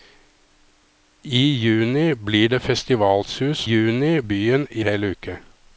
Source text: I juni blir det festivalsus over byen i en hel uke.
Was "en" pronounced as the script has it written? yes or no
no